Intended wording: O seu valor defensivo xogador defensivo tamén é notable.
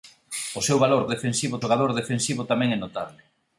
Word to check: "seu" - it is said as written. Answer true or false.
true